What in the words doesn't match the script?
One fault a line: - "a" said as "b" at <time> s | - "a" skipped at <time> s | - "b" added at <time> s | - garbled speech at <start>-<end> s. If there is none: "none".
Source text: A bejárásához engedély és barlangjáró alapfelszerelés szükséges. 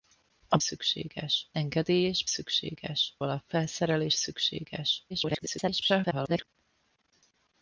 - "bejárásához" said as "szükséges" at 0.6 s
- "barlangjáró" said as "szükséges" at 2.2 s
- garbled speech at 5.1-6.5 s